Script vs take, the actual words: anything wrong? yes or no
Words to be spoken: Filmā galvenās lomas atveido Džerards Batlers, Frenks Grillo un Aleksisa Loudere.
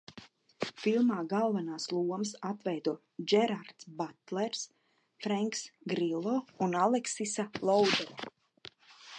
no